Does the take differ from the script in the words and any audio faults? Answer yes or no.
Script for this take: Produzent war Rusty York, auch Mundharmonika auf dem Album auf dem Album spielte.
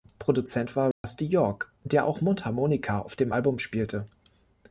yes